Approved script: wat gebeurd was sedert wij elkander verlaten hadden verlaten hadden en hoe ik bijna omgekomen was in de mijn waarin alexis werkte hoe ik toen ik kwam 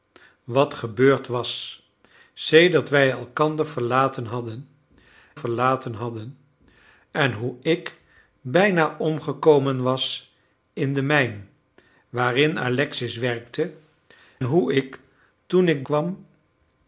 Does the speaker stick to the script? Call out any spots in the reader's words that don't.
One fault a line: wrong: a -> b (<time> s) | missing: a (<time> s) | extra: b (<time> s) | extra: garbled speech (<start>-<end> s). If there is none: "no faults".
no faults